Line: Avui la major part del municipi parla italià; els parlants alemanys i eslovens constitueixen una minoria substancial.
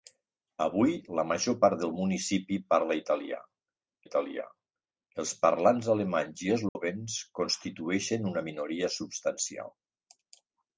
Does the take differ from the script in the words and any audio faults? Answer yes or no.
yes